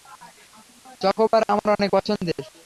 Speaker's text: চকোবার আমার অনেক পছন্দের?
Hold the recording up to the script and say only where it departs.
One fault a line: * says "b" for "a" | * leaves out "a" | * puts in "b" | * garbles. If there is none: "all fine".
all fine